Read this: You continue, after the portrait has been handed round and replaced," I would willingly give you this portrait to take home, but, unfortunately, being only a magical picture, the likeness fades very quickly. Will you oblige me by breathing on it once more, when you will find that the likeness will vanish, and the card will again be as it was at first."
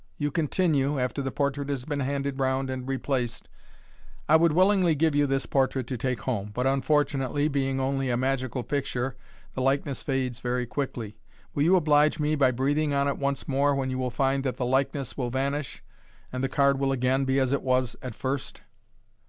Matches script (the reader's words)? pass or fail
pass